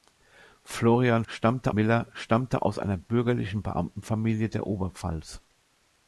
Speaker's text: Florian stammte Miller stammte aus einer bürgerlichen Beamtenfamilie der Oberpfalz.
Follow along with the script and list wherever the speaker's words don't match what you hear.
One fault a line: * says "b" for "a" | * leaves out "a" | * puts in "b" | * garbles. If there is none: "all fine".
all fine